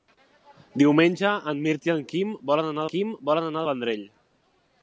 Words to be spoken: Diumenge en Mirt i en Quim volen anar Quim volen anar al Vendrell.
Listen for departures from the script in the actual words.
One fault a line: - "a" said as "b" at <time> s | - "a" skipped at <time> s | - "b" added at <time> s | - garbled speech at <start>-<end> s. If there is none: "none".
none